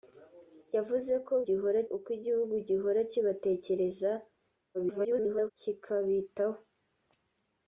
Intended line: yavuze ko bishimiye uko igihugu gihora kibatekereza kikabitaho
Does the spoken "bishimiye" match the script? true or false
false